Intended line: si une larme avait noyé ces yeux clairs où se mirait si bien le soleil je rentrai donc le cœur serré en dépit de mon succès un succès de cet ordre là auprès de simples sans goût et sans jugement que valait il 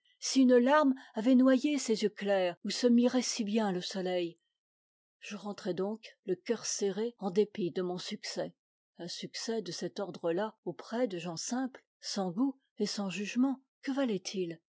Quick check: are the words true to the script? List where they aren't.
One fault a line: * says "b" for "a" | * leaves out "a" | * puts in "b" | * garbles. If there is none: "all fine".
* puts in "gens"